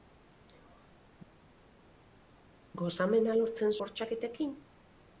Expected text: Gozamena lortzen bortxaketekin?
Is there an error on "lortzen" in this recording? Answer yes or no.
no